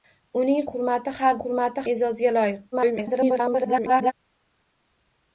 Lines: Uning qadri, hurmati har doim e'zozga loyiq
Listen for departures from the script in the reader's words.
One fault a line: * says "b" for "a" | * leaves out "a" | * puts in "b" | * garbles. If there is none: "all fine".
* leaves out "qadri"
* says "hurmati" for "doim"
* garbles